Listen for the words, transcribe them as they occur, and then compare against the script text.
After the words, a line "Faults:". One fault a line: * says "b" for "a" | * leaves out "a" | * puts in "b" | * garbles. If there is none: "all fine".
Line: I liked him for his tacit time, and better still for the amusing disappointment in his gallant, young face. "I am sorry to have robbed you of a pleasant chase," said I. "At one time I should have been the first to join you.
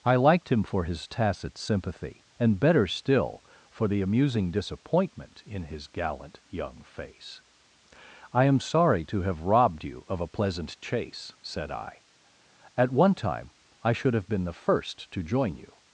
I liked him for his tacit sympathy, and better still for the amusing disappointment in his gallant, young face. "I am sorry to have robbed you of a pleasant chase," said I. "At one time I should have been the first to join you.
Faults:
* says "sympathy" for "time"